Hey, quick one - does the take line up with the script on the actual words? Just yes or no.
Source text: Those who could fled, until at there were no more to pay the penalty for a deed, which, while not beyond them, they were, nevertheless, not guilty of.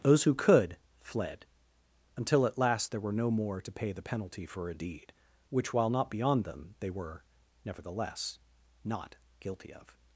no